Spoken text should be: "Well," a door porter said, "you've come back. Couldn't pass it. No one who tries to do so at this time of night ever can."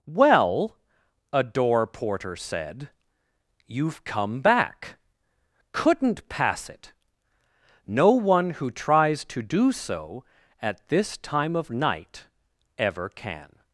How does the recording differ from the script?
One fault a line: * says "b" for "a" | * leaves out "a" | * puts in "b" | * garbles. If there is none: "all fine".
all fine